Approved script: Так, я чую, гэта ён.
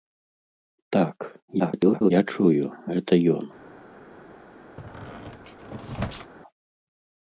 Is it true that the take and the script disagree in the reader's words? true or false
true